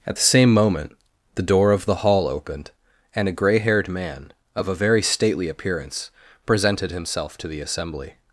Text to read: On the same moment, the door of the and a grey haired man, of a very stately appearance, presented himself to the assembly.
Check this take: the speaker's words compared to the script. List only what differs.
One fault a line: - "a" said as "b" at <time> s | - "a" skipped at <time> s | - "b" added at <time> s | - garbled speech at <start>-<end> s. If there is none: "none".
- "On" said as "At" at 0.1 s
- "hall opened" added at 2.1 s